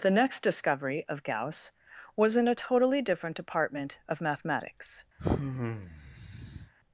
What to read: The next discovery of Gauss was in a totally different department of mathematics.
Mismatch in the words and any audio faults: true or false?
true